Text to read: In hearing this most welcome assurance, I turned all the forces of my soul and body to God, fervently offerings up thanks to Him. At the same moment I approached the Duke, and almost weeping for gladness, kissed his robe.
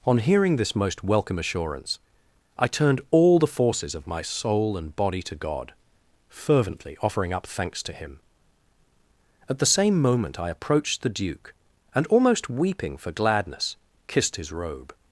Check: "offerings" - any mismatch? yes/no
yes